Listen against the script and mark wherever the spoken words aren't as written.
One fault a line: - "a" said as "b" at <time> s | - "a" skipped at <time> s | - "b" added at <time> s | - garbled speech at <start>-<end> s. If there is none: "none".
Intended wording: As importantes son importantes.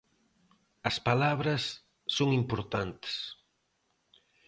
- "importantes" said as "palabras" at 1.1 s